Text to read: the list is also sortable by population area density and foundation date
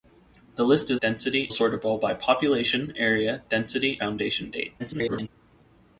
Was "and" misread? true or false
true